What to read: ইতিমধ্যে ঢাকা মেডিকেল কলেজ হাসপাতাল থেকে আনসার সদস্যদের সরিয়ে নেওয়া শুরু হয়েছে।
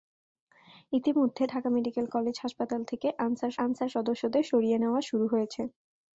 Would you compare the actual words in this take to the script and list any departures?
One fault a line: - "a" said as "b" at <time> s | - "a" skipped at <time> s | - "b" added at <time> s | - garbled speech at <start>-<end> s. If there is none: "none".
- "আনসার" added at 3.6 s